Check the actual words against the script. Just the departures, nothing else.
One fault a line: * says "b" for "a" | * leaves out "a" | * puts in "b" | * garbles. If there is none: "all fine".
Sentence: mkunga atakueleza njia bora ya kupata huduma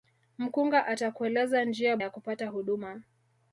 * leaves out "bora"